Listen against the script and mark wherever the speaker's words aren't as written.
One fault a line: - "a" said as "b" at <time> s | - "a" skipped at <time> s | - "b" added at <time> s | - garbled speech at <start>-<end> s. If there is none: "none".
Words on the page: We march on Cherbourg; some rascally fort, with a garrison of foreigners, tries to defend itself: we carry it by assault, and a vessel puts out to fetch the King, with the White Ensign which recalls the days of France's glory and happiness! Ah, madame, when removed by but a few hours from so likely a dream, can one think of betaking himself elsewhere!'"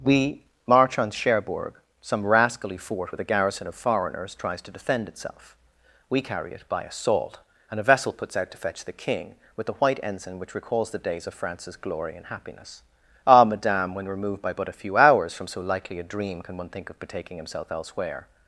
none